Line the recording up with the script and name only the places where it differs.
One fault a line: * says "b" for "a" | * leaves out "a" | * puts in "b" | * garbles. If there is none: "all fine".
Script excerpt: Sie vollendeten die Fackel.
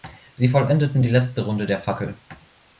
* puts in "letzte Runde der"